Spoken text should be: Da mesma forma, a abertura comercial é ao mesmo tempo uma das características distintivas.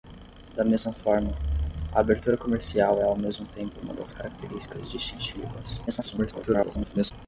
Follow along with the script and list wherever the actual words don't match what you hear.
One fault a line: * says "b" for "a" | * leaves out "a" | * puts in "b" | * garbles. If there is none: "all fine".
* garbles